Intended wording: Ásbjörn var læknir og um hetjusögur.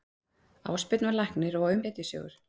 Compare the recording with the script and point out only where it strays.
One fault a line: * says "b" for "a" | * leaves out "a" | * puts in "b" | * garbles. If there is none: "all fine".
all fine